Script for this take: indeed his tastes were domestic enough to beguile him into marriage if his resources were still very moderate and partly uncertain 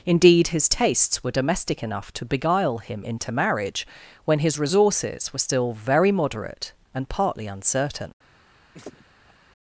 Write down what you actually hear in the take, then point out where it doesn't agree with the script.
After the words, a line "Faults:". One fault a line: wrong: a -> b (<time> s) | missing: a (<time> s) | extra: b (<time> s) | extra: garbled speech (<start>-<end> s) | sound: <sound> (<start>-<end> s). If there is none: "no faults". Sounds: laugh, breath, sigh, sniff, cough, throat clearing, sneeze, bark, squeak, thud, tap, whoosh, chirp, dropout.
indeed his tastes were domestic enough to beguile him into marriage when his resources were still very moderate and partly uncertain
Faults:
wrong: if -> when (4.2 s)
sound: laugh (8.7-9.3 s)